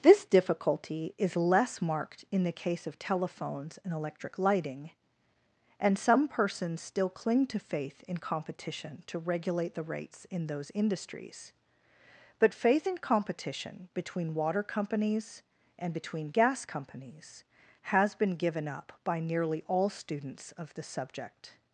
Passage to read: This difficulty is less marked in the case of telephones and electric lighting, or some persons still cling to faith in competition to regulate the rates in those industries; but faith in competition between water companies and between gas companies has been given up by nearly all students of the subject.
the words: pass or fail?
fail